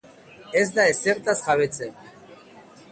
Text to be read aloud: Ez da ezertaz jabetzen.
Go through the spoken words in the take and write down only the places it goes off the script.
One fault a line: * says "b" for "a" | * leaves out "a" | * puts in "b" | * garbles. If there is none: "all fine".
all fine